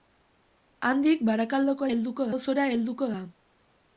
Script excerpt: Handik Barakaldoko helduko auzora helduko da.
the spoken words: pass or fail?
pass